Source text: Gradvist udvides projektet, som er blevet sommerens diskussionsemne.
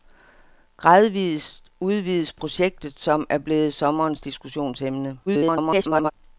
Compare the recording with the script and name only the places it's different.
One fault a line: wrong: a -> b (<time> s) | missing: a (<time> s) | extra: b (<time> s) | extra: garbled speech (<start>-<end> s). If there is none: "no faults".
extra: garbled speech (5.3-6.1 s)